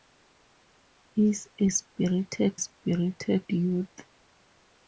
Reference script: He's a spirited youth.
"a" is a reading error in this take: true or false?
false